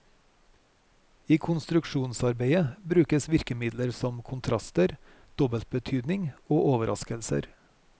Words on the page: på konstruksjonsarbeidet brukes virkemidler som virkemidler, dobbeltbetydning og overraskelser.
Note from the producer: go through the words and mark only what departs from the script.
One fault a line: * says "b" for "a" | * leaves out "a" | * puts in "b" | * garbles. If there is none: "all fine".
* says "I" for "på"
* says "kontraster" for "virkemidler"